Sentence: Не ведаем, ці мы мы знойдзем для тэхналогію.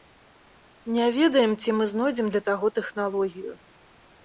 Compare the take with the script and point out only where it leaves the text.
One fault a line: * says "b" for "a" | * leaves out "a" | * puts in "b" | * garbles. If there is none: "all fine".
* leaves out "мы"
* puts in "таго"